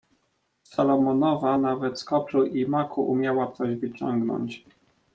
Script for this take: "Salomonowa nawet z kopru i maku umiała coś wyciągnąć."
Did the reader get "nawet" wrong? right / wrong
right